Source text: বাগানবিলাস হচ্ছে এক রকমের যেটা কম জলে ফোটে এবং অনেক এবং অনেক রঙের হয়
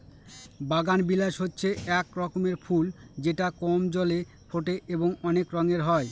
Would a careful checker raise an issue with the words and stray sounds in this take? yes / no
yes